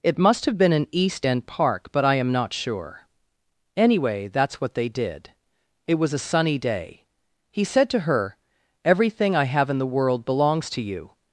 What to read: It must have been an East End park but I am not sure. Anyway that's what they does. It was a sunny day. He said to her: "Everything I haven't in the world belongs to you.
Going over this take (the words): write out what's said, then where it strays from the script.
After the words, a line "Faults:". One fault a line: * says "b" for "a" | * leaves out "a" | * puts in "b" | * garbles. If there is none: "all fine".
It must have been an East End park but I am not sure. Anyway that's what they did. It was a sunny day. He said to her: "Everything I have in the world belongs to you.
Faults:
* says "did" for "does"
* says "have" for "haven't"